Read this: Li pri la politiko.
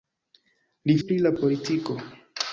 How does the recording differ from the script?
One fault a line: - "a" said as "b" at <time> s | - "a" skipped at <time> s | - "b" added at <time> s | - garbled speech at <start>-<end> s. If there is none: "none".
none